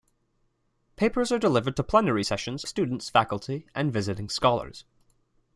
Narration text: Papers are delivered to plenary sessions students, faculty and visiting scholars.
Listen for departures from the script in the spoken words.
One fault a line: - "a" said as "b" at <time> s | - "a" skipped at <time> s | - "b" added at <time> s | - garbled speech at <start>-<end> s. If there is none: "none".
none